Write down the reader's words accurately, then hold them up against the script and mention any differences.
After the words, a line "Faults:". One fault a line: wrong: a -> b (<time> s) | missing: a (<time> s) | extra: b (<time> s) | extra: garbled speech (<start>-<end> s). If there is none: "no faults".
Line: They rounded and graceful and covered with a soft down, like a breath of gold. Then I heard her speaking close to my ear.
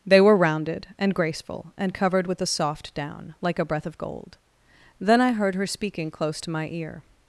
They were rounded and graceful and covered with a soft down, like a breath of gold. Then I heard her speaking close to my ear.
Faults:
extra: were (0.2 s)